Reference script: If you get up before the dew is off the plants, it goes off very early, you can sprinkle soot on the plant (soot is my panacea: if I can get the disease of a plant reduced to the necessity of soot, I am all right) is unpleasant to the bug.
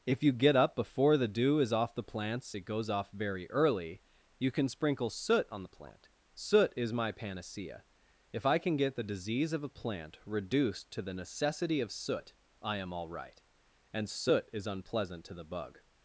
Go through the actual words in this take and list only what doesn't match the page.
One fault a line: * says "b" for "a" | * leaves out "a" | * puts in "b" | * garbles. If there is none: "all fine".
* puts in "and soot"